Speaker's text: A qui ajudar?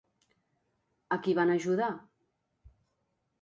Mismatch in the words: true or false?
true